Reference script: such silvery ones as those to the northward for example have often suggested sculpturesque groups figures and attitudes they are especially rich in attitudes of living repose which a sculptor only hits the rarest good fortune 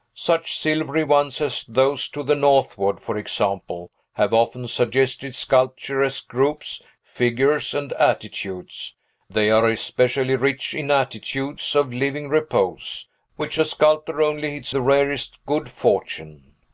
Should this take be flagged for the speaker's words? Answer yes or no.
no